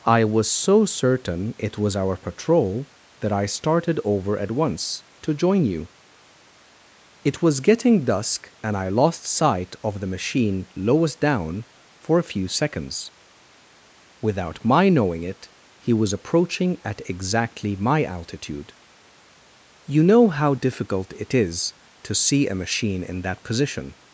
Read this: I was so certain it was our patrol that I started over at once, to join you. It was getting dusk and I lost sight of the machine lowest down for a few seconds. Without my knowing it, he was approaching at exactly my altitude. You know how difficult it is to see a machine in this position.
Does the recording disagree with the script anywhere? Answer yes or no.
yes